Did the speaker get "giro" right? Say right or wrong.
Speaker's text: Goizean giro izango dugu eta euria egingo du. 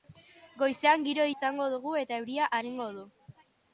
right